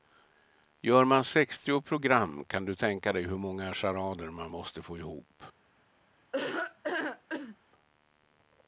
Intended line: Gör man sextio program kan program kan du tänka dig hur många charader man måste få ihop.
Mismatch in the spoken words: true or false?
true